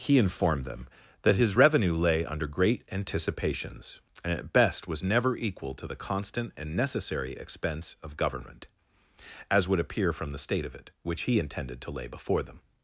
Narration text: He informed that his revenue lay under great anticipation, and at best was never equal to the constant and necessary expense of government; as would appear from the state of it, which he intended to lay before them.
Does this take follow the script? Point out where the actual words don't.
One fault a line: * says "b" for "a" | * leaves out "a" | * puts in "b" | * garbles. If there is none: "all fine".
* puts in "them"
* says "anticipations" for "anticipation"